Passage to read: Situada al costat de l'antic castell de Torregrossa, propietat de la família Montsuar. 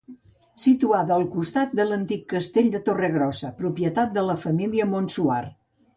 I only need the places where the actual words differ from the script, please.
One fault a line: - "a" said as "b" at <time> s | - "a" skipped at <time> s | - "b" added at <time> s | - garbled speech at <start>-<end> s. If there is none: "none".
none